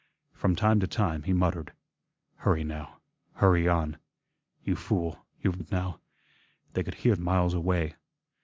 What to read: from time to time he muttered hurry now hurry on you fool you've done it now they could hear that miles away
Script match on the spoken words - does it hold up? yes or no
no